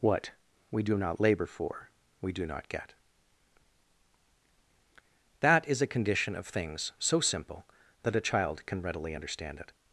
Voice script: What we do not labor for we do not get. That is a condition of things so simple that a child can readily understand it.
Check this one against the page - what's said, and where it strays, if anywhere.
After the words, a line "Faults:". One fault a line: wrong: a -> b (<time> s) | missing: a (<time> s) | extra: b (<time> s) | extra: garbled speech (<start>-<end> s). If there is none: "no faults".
What we do not labor for we do not get. That is a condition of things so simple that a child can readily understand it.
Faults:
no faults